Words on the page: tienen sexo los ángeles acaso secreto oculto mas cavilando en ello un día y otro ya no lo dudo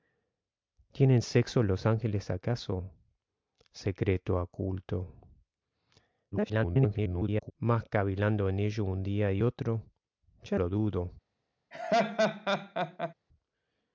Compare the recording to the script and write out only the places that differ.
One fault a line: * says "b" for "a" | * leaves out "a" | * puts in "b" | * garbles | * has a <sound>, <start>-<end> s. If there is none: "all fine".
* garbles
* leaves out "no"
* has a laugh, 11.7-13.1 s